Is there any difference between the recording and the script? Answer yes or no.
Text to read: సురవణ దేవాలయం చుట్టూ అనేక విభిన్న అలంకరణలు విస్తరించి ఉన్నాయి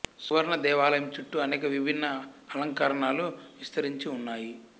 no